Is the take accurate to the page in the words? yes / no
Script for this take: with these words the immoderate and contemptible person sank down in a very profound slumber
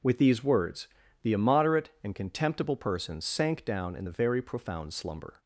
no